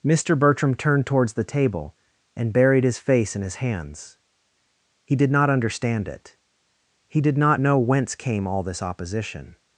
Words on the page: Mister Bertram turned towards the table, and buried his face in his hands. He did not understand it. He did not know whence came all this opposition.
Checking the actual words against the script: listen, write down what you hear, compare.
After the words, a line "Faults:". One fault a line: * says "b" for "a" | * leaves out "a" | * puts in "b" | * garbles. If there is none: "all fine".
Mister Bertram turned towards the table, and buried his face in his hands. He did not understand it. He did not know whence came all this opposition.
Faults:
all fine